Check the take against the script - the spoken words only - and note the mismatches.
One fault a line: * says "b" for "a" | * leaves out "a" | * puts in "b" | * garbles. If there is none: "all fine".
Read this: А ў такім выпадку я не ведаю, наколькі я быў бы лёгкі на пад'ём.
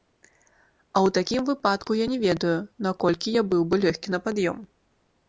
all fine